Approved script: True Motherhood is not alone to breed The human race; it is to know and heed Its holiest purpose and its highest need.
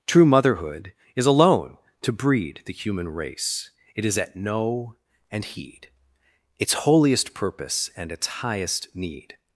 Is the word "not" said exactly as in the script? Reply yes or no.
no